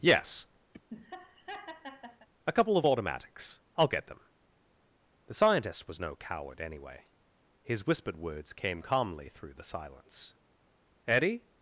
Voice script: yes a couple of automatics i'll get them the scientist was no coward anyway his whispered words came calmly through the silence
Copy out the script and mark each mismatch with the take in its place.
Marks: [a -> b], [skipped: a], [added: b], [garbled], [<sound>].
yes [laugh] a couple of automatics i'll get them the scientist was no coward anyway his whispered words came calmly through the silence [added: eddie]